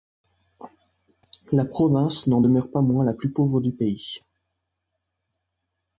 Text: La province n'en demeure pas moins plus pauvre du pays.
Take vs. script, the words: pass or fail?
fail